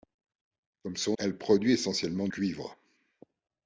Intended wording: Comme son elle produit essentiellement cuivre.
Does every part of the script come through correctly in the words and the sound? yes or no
yes